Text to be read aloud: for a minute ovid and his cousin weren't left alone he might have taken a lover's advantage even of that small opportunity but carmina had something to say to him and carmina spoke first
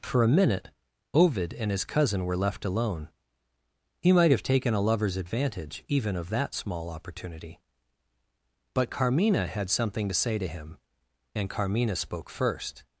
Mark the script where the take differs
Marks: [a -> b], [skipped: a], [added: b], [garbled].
for a minute ovid and his cousin [weren't -> were] left alone he might have taken a lover's advantage even of that small opportunity but carmina had something to say to him and carmina spoke first